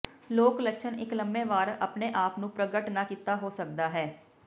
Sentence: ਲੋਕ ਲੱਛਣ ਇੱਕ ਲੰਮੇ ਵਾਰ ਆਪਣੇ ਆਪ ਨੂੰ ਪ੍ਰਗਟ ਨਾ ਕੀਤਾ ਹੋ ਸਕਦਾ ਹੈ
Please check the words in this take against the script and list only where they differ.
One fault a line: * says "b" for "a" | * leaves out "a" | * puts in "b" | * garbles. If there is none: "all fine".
all fine